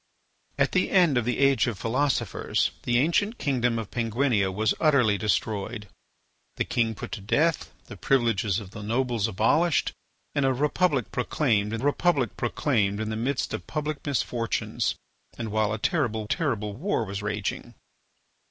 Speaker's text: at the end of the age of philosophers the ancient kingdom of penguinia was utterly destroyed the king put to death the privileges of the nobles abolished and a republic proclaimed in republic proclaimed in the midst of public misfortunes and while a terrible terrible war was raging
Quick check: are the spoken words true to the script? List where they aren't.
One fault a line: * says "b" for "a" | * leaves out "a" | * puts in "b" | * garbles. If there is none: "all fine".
all fine